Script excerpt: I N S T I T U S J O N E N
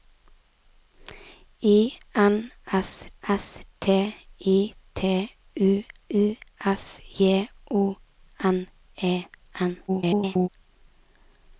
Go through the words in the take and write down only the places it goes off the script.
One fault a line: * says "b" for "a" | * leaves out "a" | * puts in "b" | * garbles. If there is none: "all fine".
* puts in "S"
* puts in "U"
* garbles